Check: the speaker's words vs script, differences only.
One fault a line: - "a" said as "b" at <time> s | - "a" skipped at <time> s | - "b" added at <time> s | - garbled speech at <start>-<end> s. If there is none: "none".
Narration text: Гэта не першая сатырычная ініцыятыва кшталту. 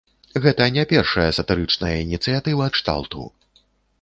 none